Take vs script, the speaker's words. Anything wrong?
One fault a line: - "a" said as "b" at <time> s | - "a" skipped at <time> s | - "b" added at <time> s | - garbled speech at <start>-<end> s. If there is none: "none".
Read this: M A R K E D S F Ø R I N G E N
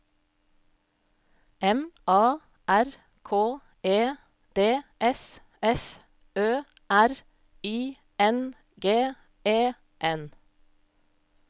none